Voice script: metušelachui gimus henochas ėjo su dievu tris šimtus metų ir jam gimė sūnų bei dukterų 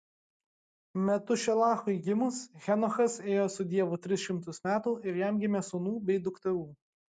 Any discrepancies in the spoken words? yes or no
no